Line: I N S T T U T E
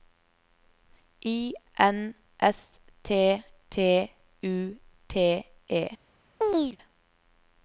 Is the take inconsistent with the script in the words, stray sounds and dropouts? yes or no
yes